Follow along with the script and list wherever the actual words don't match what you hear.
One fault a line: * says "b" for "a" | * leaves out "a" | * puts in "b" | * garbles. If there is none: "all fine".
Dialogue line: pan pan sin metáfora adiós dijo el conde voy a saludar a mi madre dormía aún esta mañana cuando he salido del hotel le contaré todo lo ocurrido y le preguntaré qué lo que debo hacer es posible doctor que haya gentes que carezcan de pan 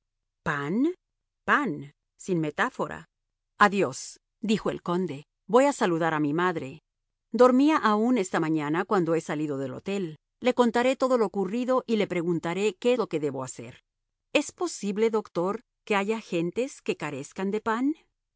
all fine